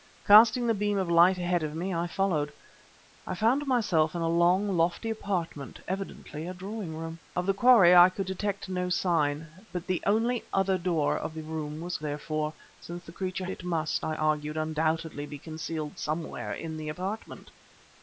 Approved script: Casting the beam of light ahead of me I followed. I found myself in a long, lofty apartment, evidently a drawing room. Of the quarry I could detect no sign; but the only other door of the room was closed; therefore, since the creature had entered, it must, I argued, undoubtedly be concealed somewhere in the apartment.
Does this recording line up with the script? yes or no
no